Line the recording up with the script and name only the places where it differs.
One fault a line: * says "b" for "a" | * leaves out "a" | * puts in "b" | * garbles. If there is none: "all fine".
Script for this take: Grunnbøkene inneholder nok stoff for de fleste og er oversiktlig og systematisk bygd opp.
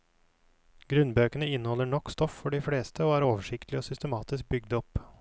all fine